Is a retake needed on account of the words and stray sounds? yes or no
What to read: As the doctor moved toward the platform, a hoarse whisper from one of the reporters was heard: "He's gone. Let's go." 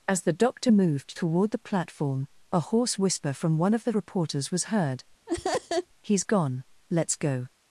yes